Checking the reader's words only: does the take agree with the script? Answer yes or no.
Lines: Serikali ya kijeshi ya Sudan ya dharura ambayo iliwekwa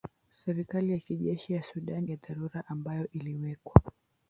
yes